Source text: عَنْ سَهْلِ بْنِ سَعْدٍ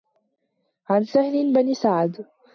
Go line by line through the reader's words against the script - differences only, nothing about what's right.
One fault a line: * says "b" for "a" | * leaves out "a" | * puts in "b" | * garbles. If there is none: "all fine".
all fine